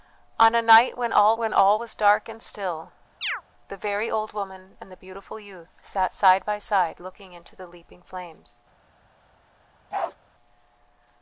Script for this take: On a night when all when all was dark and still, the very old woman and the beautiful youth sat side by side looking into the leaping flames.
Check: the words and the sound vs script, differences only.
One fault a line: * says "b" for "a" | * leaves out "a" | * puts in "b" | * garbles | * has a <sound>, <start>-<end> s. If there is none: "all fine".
* has a chirp, 3.2-3.4 s
* has a bark, 9.9-10.2 s